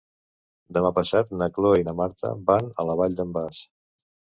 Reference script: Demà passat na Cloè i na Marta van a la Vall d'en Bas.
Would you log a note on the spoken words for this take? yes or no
no